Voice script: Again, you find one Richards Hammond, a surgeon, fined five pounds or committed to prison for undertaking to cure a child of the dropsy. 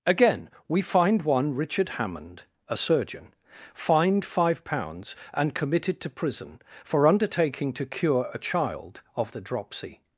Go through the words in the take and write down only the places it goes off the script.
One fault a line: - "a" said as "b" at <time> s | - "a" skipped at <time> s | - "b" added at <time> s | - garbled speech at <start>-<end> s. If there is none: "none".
- "you" said as "we" at 0.7 s
- "Richards" said as "Richard" at 1.6 s
- "or" said as "and" at 5.3 s